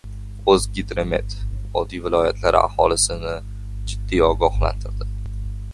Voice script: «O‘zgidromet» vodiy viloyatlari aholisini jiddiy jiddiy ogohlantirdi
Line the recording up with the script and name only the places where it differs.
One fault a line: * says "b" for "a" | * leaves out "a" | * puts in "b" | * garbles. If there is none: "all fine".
* leaves out "jiddiy"